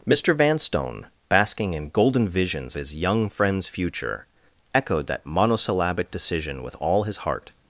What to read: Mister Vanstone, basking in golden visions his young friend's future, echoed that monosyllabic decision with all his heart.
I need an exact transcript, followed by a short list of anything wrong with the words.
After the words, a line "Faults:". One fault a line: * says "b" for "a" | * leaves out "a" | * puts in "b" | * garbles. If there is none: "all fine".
Mister Vanstone, basking in golden visions his young friend's future, echoed that monosyllabic decision with all his heart.
Faults:
all fine